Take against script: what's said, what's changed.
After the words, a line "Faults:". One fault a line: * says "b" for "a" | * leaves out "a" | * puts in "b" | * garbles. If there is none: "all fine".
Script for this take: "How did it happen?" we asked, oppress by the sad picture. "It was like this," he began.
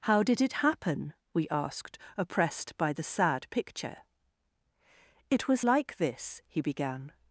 "How did it happen?" we asked, oppressed by the sad picture. "It was like this," he began.
Faults:
* says "oppressed" for "oppress"